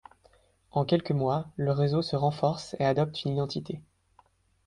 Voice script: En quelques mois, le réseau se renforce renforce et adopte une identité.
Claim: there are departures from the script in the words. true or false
true